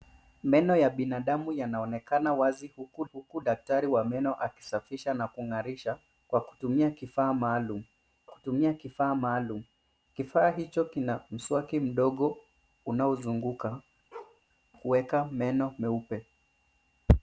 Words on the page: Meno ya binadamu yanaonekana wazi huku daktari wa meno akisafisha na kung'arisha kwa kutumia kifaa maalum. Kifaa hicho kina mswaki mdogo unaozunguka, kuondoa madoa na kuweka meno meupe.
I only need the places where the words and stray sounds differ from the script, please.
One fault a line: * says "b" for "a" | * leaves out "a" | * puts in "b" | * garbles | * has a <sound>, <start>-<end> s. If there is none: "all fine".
* puts in "huku"
* puts in "kutumia"
* puts in "maalum Kifaa"
* leaves out "kuondoa madoa na"
* has a bark, 14.1-14.4 s